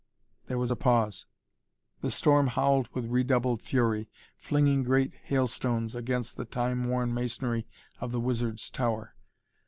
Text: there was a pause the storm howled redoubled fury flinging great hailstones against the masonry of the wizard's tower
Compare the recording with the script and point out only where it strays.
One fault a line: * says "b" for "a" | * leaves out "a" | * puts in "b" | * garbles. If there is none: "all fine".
* puts in "with"
* puts in "time worn"